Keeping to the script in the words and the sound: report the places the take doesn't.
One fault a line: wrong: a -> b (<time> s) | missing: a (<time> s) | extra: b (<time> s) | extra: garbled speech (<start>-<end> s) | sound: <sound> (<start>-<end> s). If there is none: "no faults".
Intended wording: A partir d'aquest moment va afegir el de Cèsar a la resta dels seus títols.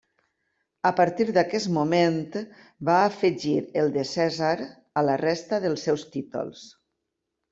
no faults